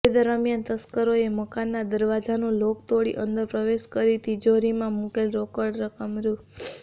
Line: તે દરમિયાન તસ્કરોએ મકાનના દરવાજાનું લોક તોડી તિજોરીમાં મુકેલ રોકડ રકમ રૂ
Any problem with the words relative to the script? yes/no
yes